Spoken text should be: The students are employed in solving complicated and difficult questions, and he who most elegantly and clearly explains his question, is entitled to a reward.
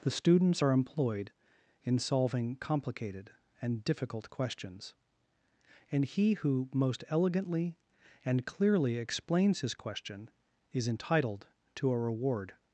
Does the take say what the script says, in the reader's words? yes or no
yes